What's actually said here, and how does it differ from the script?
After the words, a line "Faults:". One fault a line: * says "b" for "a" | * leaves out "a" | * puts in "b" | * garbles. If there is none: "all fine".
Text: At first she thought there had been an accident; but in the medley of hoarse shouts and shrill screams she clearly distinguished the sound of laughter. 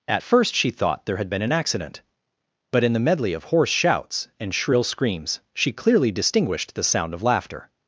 At first she thought there had been an accident; but in the medley of hoarse shouts and shrill screams she clearly distinguished the sound of laughter.
Faults:
all fine